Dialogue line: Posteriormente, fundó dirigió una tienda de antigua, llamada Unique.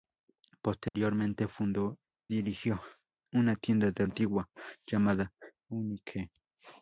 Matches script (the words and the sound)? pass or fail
fail